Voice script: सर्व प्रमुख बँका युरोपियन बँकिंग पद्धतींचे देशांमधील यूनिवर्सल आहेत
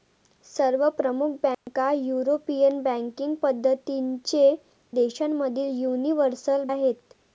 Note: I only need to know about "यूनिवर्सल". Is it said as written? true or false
true